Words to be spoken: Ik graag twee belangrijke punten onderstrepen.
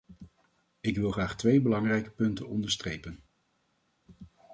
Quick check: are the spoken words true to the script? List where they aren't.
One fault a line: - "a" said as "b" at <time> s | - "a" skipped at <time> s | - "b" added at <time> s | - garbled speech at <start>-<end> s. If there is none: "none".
- "wil" added at 1.0 s